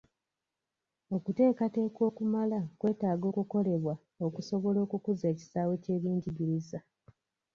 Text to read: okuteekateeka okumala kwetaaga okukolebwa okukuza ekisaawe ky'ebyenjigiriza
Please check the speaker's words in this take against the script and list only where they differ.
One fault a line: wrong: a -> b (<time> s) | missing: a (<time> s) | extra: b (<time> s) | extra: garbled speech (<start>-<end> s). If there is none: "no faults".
extra: okusobola (4.3 s)